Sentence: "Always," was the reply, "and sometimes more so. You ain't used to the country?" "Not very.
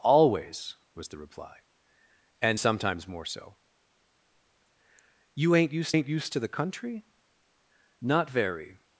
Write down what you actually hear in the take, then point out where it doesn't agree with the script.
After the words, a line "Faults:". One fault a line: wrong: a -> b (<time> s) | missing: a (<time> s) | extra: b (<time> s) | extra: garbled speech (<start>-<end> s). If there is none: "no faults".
"Always," was the reply, "and sometimes more so. You ain't used ain't used to the country?" "Not very.
Faults:
extra: ain't used (5.9 s)